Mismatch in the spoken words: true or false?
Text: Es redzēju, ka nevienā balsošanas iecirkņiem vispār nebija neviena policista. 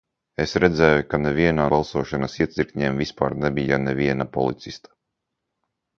false